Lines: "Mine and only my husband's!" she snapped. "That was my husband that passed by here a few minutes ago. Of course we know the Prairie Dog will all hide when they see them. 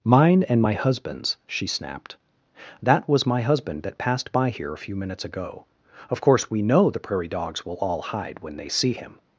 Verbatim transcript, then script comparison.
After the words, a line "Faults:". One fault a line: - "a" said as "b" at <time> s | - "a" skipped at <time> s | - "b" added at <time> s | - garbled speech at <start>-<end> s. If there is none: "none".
"Mine and my husband's!" she snapped. "That was my husband that passed by here a few minutes ago. Of course we know the Prairie Dogs will all hide when they see him.
Faults:
- "only" skipped at 0.6 s
- "Dog" said as "Dogs" at 7.3 s
- "them" said as "him" at 8.9 s